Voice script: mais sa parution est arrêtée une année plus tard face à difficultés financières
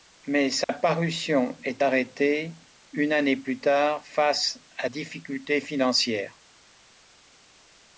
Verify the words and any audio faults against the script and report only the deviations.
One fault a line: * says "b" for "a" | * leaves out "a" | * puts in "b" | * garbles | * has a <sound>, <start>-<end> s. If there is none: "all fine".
* has a dropout, 0.6-0.7 s